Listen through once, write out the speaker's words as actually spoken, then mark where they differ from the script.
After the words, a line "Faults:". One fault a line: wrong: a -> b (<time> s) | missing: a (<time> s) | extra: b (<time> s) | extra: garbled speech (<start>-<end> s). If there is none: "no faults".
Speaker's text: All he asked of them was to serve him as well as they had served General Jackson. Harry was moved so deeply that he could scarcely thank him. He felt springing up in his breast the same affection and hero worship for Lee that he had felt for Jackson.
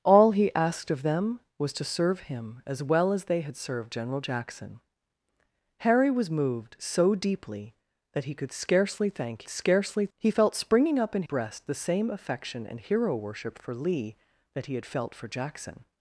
All he asked of them was to serve him as well as they had served General Jackson. Harry was moved so deeply that he could scarcely thank scarcely. He felt springing up in breast the same affection and hero worship for Lee that he had felt for Jackson.
Faults:
wrong: him -> scarcely (9.5 s)
missing: his (11.2 s)